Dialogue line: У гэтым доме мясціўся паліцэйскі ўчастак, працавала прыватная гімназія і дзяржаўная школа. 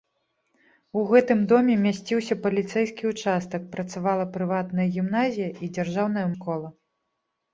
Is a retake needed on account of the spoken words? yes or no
no